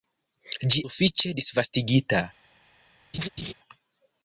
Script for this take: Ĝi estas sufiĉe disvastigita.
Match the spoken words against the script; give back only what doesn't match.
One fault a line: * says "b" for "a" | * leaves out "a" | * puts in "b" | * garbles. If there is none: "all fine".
* leaves out "estas"